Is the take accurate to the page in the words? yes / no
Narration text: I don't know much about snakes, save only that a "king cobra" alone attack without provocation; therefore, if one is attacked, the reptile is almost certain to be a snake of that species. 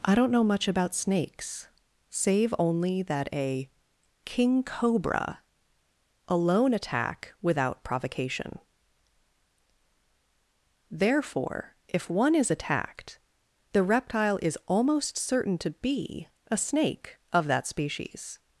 yes